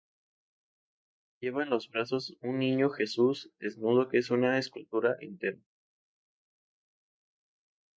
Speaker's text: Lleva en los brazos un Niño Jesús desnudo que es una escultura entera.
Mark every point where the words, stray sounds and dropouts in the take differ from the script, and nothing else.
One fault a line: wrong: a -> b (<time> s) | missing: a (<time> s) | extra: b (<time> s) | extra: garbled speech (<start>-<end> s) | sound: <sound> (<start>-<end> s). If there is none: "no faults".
no faults